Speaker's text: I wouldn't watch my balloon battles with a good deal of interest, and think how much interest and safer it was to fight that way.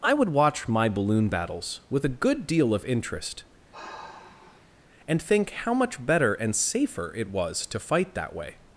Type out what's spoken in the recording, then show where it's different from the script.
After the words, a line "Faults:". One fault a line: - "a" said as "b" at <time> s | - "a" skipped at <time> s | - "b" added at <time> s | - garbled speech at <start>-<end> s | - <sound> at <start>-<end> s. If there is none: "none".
I would watch my balloon battles with a good deal of interest, and think how much better and safer it was to fight that way.
Faults:
- "wouldn't" said as "would" at 0.1 s
- sigh at 3.7-4.8 s
- "interest" said as "better" at 6.0 s